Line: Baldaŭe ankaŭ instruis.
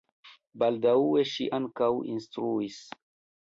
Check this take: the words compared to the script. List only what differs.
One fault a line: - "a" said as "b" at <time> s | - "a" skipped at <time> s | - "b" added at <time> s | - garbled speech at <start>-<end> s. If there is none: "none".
- "ŝi" added at 1.3 s